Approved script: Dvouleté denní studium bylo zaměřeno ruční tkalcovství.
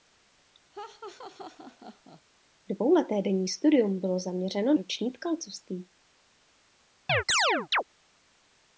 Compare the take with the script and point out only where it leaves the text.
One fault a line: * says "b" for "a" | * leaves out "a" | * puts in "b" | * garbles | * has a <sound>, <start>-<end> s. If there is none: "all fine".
* has a laugh, 0.7-2.2 s
* has a chirp, 7.1-7.8 s